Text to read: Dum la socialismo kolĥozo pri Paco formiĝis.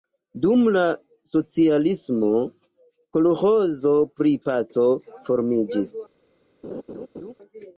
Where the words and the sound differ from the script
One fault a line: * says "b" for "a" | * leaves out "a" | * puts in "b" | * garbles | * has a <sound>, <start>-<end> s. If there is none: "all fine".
* has a laugh, 6.6-7.3 s